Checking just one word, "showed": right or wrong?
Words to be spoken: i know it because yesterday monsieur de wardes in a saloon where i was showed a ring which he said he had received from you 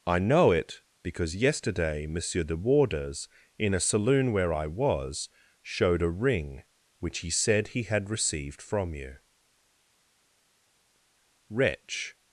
right